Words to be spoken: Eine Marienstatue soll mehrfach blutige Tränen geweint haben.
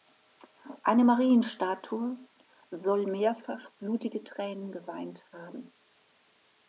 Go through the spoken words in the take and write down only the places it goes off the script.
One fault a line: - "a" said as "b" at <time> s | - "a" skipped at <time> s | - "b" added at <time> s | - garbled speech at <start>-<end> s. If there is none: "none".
none